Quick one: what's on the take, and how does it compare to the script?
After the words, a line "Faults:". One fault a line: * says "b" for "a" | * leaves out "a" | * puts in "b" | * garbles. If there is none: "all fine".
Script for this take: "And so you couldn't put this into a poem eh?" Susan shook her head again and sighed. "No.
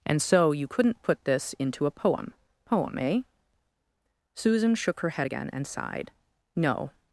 "And so you couldn't put this into a poem poem eh?" Susan shook her head again and sighed. "No.
Faults:
* puts in "poem"